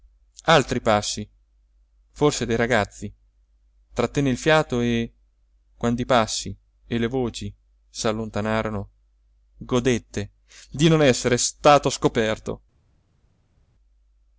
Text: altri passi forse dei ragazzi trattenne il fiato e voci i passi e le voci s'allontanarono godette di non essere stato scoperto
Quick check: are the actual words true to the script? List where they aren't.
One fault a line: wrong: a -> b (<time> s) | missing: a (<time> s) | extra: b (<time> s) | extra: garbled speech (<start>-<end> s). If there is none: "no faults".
wrong: voci -> quando (5.8 s)